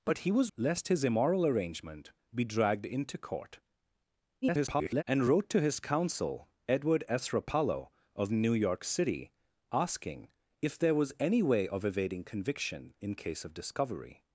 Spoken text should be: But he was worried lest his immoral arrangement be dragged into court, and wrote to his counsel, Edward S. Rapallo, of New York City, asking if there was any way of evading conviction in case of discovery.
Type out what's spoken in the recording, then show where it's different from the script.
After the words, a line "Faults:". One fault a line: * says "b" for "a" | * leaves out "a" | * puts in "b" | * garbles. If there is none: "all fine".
But he was lest his immoral arrangement be dragged into court, [garbled] and wrote to his counsel, Edward S. Rapallo, of New York City, asking if there was any way of evading conviction in case of discovery.
Faults:
* leaves out "worried"
* garbles